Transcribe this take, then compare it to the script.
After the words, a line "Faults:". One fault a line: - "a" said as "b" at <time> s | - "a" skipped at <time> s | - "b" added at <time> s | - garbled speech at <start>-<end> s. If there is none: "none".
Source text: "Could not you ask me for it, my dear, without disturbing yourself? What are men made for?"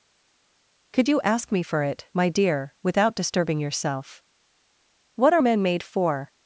"Could you ask me for it, my dear, without disturbing yourself? What are men made for?"
Faults:
- "not" skipped at 1.1 s